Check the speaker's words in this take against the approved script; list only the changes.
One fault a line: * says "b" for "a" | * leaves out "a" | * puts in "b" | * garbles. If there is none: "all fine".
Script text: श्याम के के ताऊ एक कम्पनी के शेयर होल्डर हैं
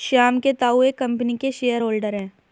* leaves out "के"